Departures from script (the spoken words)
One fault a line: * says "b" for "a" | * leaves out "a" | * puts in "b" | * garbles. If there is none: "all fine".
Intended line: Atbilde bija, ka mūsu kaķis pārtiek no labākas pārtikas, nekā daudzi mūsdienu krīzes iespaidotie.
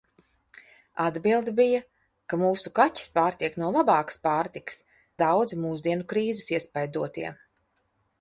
* leaves out "nekā"